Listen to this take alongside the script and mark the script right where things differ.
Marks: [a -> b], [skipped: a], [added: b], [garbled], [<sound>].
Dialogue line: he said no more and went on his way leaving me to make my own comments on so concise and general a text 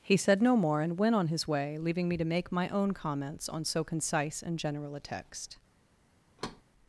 he said no more and went on his way leaving me to make my own comments on so concise and general a text [thud]